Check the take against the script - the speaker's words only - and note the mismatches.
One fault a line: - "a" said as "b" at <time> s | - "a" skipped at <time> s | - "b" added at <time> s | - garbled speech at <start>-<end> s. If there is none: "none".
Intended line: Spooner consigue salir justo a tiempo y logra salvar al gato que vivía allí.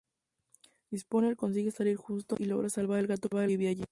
- "gato que" skipped at 3.1 s